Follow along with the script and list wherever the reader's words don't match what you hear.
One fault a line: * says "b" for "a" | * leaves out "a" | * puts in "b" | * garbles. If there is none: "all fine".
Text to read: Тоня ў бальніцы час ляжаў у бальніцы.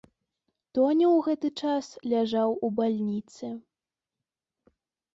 * says "гэты" for "бальніцы"